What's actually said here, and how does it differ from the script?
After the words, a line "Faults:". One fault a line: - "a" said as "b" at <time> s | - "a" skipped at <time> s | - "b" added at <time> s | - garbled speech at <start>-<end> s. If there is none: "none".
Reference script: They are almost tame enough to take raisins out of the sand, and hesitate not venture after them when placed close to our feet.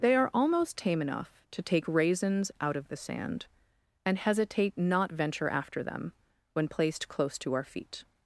They are almost tame enough to take raisins out of the sand, and hesitate not venture after them when placed close to our feet.
Faults:
none